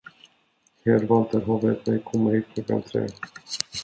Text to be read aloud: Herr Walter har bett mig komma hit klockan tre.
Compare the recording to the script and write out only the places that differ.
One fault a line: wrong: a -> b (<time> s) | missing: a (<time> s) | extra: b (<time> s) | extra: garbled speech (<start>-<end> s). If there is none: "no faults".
no faults